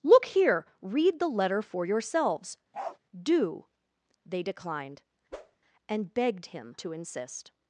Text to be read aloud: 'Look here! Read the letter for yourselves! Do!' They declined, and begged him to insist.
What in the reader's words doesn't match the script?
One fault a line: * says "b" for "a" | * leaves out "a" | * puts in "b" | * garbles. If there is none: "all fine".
all fine